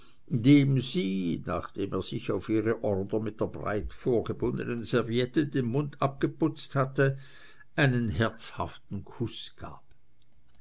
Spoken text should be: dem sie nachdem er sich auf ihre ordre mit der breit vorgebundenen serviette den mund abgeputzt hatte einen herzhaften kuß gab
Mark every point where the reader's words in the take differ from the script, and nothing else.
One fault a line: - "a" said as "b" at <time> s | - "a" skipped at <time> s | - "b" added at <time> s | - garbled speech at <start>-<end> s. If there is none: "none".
none